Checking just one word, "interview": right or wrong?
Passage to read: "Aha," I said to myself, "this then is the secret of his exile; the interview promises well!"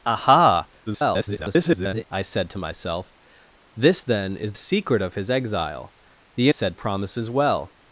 wrong